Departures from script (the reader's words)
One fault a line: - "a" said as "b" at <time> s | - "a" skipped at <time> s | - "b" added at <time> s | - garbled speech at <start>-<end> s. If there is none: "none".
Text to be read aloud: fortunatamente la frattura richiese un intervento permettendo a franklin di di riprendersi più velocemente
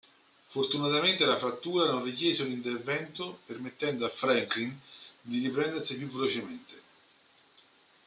- "non" added at 1.9 s
- "di" skipped at 5.4 s